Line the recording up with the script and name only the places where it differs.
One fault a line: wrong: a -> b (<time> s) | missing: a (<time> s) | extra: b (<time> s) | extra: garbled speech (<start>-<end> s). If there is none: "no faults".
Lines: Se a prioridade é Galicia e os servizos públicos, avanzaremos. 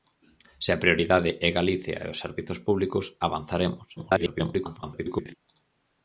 extra: garbled speech (4.0-5.4 s)